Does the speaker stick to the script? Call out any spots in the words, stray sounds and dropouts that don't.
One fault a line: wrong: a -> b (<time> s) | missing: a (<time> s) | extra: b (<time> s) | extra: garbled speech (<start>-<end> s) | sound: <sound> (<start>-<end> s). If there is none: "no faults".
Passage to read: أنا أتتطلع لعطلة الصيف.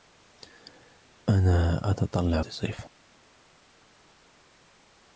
missing: لعطلة (2.4 s)